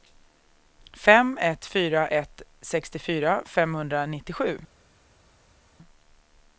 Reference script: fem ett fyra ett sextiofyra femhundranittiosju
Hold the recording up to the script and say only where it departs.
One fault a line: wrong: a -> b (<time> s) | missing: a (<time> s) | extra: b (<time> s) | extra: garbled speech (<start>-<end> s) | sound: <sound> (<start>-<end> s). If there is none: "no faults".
no faults